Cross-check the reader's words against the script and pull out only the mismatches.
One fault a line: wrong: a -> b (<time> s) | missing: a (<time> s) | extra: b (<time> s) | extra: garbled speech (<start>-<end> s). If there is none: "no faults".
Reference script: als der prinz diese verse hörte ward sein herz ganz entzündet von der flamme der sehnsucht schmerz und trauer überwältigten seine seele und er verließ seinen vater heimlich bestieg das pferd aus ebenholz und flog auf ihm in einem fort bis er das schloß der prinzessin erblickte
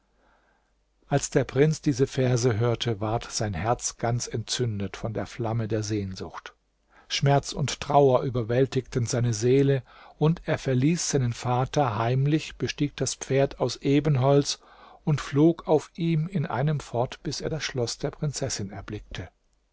no faults